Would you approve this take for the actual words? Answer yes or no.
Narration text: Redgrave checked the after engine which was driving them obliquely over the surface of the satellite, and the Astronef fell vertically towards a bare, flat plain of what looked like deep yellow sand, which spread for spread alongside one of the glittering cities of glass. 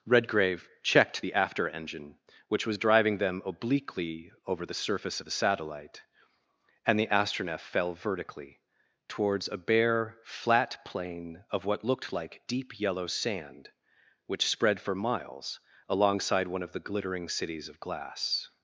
no